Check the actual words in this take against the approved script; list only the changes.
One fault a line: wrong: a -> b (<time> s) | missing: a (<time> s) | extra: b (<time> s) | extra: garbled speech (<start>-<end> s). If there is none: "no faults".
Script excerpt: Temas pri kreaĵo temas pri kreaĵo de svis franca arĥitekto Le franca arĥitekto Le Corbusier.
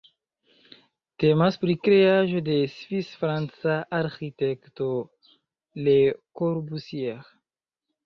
missing: temas pri kreaĵo (2.4 s)
missing: franca arĥitekto Le (6.0 s)